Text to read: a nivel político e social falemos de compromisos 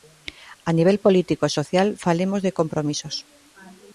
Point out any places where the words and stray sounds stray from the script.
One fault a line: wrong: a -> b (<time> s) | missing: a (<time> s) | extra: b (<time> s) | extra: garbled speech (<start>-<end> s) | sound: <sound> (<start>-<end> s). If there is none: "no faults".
no faults